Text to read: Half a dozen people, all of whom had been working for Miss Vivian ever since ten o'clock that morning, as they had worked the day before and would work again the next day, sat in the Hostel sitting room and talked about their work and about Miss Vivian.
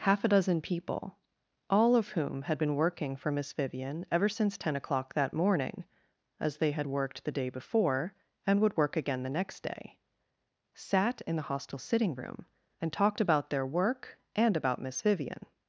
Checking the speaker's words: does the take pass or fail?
pass